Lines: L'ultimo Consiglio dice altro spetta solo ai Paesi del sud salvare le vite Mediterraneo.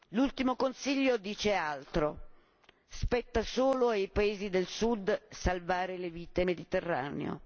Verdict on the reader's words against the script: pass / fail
pass